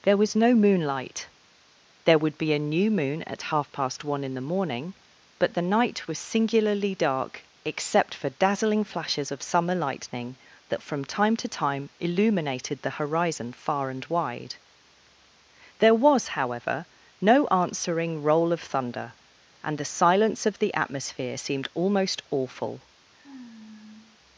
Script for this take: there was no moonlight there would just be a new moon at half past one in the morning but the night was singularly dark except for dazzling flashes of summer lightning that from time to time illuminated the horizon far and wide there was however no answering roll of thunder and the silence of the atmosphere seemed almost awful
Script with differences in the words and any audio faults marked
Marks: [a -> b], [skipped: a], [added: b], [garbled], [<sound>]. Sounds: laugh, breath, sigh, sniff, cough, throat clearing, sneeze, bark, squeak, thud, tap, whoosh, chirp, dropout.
there was no moonlight there would [skipped: just] be a new moon at half past one in the morning but the night was singularly dark except for dazzling flashes of summer lightning that from time to time illuminated the horizon far and wide there was however no answering roll of thunder and the silence of the atmosphere seemed almost awful [sigh]